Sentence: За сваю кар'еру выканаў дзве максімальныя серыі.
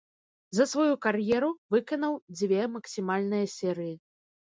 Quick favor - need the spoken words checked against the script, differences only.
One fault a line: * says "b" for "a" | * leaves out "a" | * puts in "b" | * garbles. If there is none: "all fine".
all fine